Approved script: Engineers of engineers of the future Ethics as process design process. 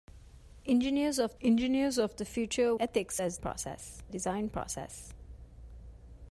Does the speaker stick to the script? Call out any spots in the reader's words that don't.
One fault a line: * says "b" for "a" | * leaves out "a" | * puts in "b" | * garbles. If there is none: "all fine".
all fine